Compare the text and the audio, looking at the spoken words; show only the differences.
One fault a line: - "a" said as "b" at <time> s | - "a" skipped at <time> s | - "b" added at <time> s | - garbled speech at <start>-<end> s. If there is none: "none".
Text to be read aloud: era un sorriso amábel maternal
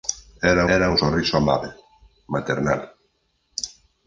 - "era" added at 0.8 s